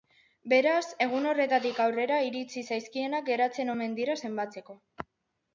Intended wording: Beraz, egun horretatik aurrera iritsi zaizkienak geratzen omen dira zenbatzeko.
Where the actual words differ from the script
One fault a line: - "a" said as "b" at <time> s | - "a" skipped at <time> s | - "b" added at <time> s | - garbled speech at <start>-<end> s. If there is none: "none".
none